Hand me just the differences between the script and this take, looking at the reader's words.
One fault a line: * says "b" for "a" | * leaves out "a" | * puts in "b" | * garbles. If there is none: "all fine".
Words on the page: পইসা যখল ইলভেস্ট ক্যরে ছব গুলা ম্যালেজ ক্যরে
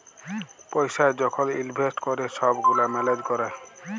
all fine